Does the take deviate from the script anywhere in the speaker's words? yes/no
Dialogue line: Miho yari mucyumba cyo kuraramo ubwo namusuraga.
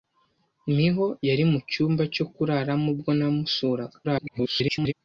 yes